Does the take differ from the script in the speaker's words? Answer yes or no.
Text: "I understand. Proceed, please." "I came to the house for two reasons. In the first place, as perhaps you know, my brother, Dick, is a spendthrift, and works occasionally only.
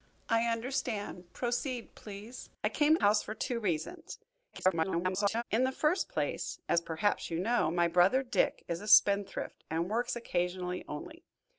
yes